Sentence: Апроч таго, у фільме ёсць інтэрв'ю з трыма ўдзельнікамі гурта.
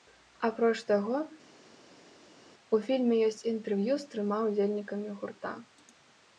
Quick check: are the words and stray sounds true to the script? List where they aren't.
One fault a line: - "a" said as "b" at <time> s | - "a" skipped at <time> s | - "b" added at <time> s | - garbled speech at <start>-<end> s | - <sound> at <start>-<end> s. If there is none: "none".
none